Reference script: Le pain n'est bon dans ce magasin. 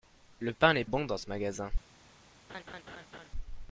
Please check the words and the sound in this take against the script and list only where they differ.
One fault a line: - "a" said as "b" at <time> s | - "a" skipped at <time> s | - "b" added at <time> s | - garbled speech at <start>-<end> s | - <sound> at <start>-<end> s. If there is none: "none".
- laugh at 2.5-3.3 s